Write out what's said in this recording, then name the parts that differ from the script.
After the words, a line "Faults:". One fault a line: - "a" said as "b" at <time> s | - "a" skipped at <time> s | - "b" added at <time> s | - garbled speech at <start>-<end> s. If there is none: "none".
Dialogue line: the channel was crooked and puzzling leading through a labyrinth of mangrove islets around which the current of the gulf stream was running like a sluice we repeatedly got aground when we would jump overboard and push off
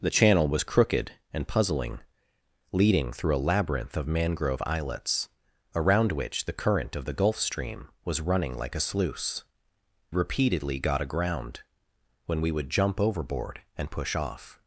the channel was crooked and puzzling leading through a labyrinth of mangrove islets around which the current of the gulf stream was running like a sluice repeatedly got aground when we would jump overboard and push off
Faults:
- "we" skipped at 9.4 s